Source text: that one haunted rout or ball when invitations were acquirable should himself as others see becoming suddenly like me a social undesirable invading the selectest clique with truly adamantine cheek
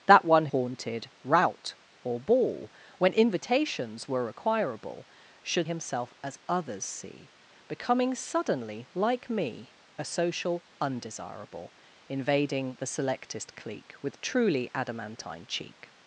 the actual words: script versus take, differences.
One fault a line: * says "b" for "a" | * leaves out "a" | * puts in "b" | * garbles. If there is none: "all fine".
all fine